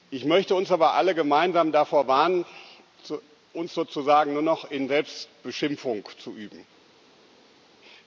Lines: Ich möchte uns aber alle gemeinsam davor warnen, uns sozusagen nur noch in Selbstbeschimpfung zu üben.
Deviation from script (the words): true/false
false